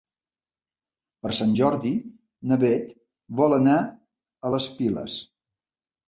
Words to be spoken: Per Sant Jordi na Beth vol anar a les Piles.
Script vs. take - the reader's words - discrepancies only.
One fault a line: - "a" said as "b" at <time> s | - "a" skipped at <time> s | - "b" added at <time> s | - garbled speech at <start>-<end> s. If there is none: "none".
none